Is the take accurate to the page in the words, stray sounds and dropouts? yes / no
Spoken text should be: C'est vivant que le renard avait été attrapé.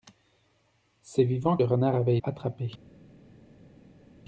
no